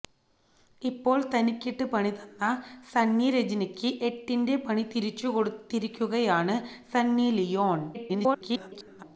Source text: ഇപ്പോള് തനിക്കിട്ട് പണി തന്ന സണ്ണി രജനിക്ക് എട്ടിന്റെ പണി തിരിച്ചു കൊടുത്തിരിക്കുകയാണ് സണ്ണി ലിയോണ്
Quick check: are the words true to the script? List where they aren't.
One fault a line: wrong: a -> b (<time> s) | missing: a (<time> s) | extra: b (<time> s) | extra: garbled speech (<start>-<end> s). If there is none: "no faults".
extra: garbled speech (7.9-9.0 s)